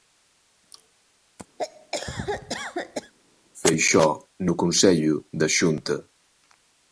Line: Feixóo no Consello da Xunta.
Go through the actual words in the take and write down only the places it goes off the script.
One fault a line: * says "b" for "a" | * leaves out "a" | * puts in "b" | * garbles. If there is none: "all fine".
all fine